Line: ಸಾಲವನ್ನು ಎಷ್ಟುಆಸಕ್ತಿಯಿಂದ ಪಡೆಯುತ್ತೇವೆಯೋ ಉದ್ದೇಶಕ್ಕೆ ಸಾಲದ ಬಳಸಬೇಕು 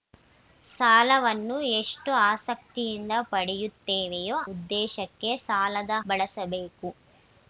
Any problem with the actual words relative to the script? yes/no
no